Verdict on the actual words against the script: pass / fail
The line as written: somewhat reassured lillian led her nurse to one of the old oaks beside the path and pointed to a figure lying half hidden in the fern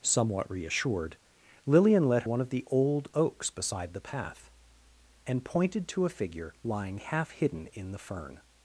fail